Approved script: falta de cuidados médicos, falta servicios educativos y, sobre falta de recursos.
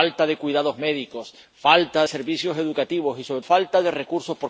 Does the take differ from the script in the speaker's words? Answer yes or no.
no